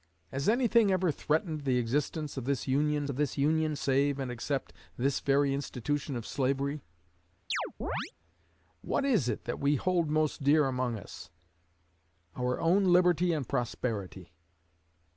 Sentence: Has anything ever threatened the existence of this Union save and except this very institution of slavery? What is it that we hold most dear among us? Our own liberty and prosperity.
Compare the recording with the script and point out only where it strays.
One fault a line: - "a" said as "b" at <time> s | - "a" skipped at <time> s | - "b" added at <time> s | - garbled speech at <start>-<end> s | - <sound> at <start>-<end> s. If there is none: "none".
- "of this Union" added at 3.1 s
- chirp at 7.5-8.1 s